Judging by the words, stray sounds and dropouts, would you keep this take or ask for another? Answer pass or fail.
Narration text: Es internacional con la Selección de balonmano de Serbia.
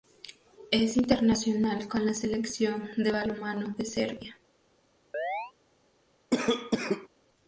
fail